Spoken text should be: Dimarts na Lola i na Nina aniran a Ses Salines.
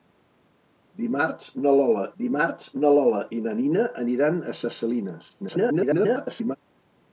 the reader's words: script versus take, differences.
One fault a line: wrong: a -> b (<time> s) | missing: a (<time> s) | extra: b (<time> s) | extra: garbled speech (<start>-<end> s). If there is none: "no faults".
extra: dimarts na Lola (2.2 s)
extra: garbled speech (5.4-6.6 s)